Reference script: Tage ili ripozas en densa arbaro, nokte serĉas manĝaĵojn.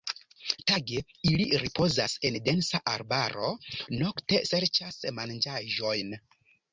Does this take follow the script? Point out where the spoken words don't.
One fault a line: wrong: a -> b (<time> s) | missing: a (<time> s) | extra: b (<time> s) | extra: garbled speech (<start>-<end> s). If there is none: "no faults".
no faults